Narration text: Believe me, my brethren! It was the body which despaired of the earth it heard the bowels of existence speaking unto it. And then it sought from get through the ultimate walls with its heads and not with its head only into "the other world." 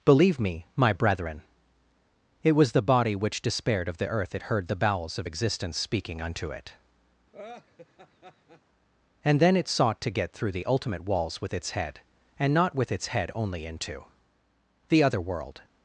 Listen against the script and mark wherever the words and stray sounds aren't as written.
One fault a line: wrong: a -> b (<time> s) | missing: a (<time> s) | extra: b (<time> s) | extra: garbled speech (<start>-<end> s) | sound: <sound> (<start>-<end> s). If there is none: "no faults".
sound: laugh (7.3-8.6 s)
wrong: from -> to (10.0 s)
wrong: heads -> head (11.7 s)